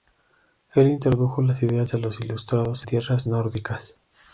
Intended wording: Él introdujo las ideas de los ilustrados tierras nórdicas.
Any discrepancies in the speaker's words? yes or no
no